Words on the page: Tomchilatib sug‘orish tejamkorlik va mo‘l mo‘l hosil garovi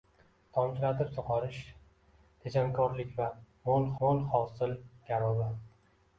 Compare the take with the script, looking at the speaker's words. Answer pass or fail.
pass